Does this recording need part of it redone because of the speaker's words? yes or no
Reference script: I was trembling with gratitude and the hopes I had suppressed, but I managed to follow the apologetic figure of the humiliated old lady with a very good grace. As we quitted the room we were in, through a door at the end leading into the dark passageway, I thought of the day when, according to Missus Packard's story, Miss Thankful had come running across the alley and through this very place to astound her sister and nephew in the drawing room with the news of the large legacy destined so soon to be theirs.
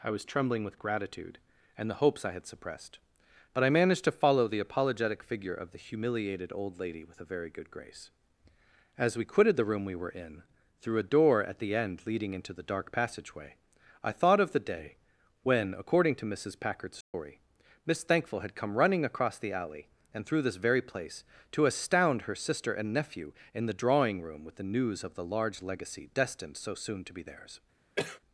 no